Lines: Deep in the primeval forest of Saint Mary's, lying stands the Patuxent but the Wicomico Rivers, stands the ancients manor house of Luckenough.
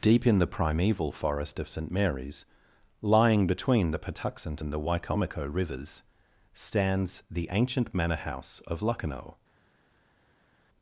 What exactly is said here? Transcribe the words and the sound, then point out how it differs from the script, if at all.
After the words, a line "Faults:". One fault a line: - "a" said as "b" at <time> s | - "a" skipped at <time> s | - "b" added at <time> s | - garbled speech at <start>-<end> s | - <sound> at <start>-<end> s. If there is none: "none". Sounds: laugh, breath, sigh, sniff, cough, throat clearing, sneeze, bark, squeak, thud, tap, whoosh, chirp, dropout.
Deep in the primeval forest of Saint Mary's, lying between the Patuxent and the Wicomico Rivers, stands the ancient manor house of Luckenough.
Faults:
- "stands" said as "between" at 3.5 s
- "but" said as "and" at 4.6 s
- "ancients" said as "ancient" at 7.5 s